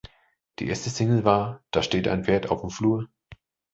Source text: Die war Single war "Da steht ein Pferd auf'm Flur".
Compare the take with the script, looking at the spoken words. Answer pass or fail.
fail